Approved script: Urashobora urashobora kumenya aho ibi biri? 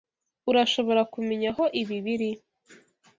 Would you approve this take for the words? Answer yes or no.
no